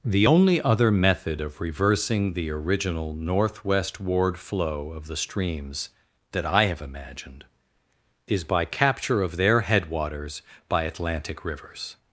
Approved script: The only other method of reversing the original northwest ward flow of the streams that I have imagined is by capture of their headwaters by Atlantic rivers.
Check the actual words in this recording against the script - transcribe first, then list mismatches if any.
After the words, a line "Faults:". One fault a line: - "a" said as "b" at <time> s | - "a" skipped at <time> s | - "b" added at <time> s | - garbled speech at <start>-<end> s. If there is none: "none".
The only other method of reversing the original northwest ward flow of the streams that I have imagined is by capture of their headwaters by Atlantic rivers.
Faults:
none